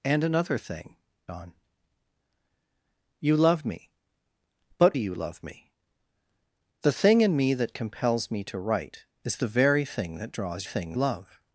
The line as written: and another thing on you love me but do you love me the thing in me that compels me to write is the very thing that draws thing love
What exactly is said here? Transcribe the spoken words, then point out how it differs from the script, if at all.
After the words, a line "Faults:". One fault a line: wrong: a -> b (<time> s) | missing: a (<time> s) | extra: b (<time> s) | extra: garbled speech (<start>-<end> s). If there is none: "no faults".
and another thing on you love me but do you love me the thing in me that compels me to write is the very thing that draws thing love
Faults:
no faults